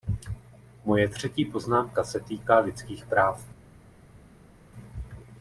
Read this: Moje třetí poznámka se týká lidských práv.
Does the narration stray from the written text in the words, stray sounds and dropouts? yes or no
no